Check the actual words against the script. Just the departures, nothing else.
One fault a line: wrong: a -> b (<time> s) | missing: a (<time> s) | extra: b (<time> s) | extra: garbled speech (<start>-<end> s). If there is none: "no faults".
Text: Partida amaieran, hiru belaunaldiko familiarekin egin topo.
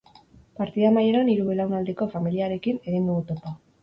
extra: dugu (3.1 s)